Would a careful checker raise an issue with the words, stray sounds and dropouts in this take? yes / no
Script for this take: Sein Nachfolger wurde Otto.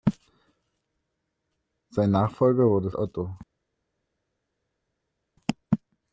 no